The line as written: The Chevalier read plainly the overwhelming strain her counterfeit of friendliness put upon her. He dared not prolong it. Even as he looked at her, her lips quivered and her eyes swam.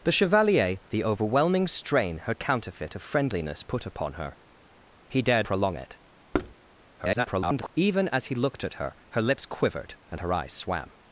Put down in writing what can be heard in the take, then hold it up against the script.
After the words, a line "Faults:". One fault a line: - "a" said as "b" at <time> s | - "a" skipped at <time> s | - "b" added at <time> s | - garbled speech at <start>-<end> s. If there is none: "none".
The Chevalier the overwhelming strain her counterfeit of friendliness put upon her. He dared prolong it. [garbled] Even as he looked at her, her lips quivered and her eyes swam.
Faults:
- "read plainly" skipped at 0.8 s
- "not" skipped at 5.5 s
- garbled speech at 7.0-7.7 s